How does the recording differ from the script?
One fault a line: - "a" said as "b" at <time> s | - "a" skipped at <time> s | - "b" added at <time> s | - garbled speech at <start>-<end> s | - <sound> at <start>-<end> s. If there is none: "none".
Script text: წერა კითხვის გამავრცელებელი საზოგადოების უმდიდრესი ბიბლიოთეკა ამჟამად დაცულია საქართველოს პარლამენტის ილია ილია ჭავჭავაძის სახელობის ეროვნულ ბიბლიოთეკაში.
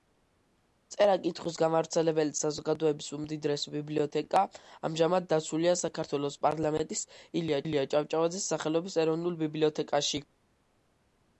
none